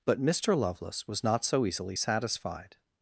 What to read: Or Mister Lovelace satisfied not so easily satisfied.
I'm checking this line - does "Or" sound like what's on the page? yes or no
no